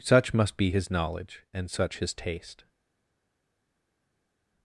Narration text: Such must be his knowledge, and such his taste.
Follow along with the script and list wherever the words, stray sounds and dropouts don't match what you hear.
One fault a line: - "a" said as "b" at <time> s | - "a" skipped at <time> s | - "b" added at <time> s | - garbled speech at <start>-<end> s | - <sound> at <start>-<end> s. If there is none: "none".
none